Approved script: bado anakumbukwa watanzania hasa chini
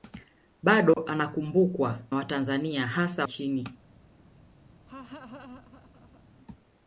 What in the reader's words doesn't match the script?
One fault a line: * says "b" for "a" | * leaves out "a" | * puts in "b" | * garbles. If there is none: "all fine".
all fine